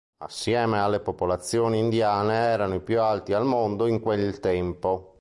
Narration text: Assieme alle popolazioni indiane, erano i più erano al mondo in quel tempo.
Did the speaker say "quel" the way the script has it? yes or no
yes